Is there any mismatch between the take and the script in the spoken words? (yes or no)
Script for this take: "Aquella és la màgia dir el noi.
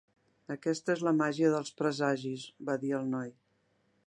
yes